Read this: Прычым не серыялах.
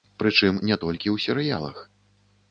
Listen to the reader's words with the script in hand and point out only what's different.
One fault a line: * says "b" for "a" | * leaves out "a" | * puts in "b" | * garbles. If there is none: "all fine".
* puts in "толькі ў"